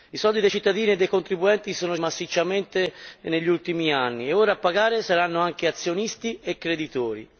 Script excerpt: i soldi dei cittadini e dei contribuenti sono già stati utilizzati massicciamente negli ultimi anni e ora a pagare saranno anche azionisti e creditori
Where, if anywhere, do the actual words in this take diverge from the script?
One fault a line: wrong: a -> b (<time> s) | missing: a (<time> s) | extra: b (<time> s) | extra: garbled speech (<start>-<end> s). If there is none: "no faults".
missing: già stati utilizzati (1.9 s)